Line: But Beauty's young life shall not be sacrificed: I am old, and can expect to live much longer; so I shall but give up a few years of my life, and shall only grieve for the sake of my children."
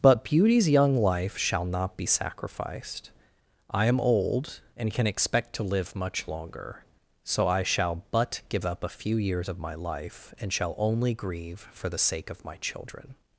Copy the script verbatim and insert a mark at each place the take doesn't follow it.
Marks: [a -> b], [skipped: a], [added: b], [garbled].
But Beauty's young life shall not be sacrificed: I am old, and can expect to live much longer; so I shall but give up a few years of my life, and shall only grieve for the sake of my children."